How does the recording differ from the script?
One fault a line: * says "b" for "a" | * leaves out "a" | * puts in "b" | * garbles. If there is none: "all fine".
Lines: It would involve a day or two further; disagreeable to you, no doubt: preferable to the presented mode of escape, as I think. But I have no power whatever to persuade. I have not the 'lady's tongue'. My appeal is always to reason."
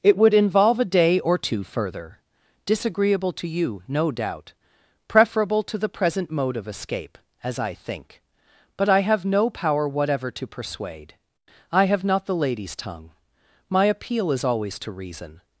* says "present" for "presented"